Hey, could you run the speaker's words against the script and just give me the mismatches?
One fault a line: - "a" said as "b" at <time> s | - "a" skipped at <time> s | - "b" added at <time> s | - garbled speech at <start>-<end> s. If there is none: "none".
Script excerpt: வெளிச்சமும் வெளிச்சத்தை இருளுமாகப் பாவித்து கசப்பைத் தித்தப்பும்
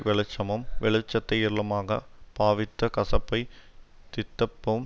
none